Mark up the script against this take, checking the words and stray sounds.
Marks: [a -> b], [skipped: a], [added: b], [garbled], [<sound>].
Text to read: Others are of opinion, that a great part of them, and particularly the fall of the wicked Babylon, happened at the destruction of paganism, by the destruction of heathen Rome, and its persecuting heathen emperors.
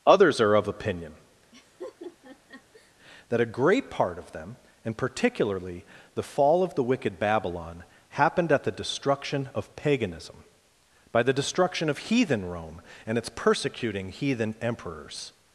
Others are of opinion, [laugh] that a great part of them, and particularly the fall of the wicked Babylon, happened at the destruction of paganism, by the destruction of heathen Rome, and its persecuting heathen emperors.